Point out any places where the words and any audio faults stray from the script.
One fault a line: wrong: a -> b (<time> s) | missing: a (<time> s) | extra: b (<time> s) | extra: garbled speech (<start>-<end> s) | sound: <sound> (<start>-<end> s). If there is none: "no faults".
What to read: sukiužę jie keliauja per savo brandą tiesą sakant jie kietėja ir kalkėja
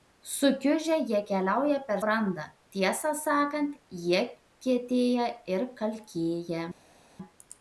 missing: savo (2.0 s)